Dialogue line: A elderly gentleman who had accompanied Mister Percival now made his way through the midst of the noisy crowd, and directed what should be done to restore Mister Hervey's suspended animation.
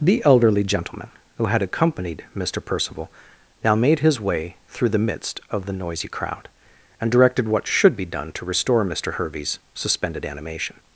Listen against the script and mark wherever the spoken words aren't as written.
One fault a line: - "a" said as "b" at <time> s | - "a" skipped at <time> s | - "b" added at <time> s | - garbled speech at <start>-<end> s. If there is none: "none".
- "A" said as "The" at 0.0 s